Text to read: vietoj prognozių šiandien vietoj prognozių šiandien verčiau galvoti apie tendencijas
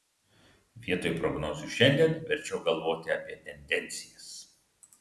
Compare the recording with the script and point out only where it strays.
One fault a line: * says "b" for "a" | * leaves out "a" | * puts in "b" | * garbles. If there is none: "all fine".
* leaves out "vietoj prognozių šiandien"